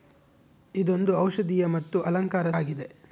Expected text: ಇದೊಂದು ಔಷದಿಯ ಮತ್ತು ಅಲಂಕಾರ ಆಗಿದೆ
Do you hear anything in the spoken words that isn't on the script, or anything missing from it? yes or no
no